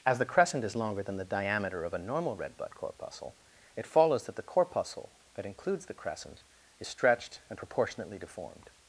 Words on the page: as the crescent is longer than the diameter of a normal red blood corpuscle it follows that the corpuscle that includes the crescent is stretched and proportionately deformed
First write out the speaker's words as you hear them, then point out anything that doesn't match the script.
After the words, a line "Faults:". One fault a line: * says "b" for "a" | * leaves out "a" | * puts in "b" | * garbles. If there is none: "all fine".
as the crescent is longer than the diameter of a normal red blood corpuscle it follows that the corpuscle that includes the crescent is stretched and proportionately deformed
Faults:
all fine